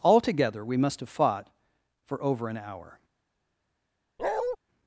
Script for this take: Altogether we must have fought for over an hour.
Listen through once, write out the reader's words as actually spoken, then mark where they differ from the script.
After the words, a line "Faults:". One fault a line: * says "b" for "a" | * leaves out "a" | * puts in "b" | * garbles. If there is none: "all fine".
Altogether we must have fought for over an hour.
Faults:
all fine